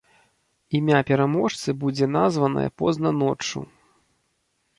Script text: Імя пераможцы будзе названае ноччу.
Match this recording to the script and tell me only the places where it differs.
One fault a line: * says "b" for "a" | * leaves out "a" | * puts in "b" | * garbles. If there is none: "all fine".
* puts in "позна"